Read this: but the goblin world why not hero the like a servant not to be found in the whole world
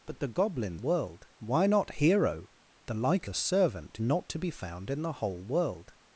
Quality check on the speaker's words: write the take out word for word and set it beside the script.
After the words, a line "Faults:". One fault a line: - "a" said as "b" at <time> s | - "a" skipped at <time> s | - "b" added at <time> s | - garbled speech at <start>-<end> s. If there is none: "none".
but the goblin world why not hero the like a servant not to be found in the whole world
Faults:
none